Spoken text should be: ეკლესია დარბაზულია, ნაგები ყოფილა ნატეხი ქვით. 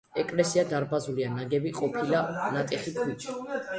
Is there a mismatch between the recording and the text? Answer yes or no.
no